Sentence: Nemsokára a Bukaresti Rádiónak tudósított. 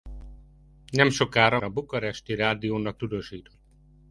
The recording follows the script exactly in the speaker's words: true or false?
true